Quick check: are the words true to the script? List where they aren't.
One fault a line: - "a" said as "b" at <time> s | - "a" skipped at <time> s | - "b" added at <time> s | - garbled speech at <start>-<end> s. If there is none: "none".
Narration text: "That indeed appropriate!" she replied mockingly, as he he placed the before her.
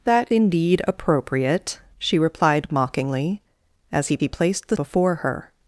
none